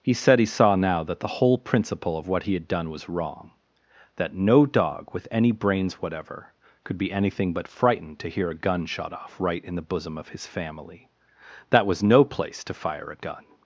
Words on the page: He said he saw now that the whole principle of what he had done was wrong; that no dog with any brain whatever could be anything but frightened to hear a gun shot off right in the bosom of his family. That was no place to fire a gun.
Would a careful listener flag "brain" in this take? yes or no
yes